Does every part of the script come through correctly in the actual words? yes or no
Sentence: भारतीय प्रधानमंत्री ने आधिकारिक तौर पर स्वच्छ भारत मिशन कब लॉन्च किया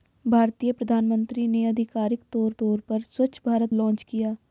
no